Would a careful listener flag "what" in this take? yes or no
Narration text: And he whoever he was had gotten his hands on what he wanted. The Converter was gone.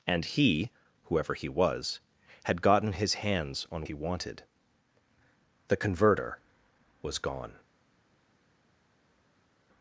yes